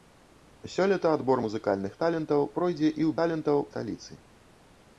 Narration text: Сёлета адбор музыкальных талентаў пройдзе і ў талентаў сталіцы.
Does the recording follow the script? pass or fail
pass